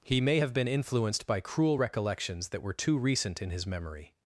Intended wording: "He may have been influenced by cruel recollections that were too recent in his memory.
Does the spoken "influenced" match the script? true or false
true